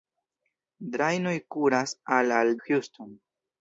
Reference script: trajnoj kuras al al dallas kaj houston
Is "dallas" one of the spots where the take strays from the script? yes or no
yes